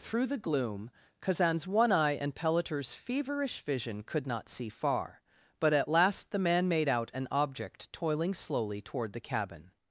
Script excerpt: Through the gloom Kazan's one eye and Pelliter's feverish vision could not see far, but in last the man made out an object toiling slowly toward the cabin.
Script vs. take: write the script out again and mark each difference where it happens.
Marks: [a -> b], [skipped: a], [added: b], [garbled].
Through the gloom Kazan's one eye and Pelliter's feverish vision could not see far, but [in -> at] last the man made out an object toiling slowly toward the cabin.